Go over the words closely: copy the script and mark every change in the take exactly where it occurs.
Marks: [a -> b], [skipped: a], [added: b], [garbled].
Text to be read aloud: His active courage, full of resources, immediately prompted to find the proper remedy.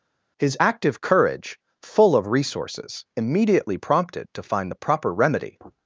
His active courage, full of resources, immediately prompted to find the proper remedy.